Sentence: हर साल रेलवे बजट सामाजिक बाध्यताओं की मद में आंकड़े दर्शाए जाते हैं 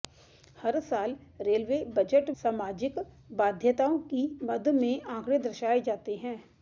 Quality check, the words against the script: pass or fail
pass